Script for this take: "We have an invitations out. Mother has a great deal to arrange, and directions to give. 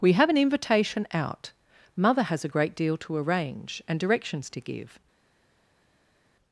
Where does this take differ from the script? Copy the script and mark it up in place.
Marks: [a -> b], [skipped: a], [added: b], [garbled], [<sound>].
"We have an [invitations -> invitation] out. Mother has a great deal to arrange, and directions to give.